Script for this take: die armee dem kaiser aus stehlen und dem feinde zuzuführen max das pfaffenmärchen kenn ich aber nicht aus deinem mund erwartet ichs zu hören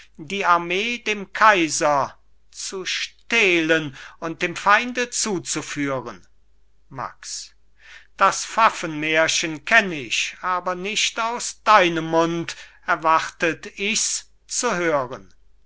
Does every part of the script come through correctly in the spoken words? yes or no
no